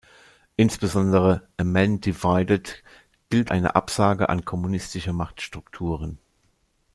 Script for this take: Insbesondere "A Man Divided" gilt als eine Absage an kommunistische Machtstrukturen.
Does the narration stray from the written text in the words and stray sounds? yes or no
yes